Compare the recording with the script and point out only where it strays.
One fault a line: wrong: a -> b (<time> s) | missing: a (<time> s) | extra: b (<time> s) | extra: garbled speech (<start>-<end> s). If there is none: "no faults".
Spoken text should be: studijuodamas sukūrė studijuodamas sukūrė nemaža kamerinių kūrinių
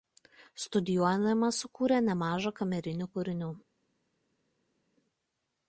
missing: studijuodamas sukūrė (2.0 s)